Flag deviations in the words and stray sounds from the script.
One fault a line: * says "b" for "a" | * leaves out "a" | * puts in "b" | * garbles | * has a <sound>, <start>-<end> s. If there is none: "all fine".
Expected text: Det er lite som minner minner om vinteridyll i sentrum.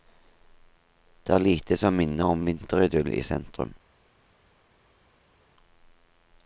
* leaves out "minner"